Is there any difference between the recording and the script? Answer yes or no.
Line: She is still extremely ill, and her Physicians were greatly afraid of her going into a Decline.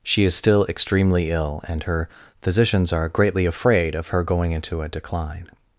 yes